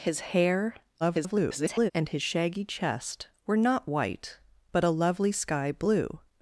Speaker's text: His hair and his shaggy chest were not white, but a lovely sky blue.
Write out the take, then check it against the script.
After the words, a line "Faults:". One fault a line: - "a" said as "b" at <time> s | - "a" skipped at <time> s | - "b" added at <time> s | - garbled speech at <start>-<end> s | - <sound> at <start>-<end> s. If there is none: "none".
His hair [garbled] and his shaggy chest were not white, but a lovely sky blue.
Faults:
- garbled speech at 1.0-1.9 s